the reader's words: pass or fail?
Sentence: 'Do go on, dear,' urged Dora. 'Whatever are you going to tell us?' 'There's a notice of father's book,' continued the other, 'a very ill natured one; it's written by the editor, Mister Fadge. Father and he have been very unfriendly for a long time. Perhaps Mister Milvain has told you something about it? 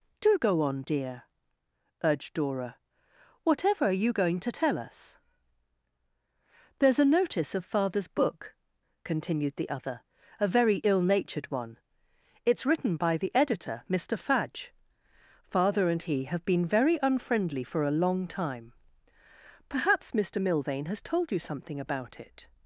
pass